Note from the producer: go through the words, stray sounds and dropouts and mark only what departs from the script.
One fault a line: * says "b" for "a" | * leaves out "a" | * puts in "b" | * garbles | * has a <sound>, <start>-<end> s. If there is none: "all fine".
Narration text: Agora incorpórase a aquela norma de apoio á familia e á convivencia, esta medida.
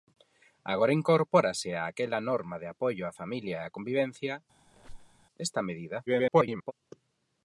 * has a squeak, 4.7-5.3 s
* garbles